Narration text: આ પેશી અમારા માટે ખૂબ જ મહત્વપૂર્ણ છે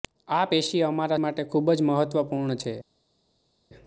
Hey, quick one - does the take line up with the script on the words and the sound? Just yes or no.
yes